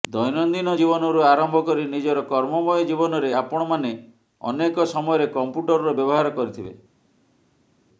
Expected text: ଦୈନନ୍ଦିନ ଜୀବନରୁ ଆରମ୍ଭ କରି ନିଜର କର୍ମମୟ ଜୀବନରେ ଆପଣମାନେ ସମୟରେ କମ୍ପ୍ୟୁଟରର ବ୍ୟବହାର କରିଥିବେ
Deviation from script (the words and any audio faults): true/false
true